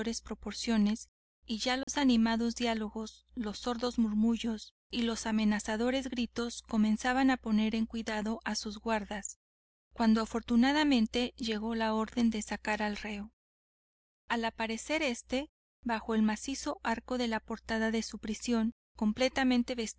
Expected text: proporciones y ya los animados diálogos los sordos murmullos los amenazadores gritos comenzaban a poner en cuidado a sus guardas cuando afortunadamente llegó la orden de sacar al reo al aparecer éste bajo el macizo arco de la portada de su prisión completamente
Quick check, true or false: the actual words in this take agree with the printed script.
false